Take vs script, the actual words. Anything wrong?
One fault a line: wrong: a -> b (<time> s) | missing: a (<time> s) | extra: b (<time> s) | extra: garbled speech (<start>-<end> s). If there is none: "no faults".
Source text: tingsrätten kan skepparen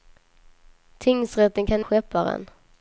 no faults